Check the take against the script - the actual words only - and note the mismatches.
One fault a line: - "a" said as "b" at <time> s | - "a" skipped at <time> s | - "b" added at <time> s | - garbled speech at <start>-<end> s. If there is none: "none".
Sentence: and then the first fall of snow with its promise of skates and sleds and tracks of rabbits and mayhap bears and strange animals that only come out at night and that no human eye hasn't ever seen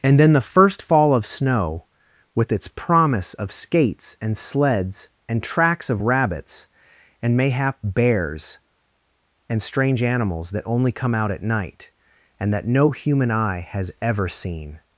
- "hasn't" said as "has" at 13.7 s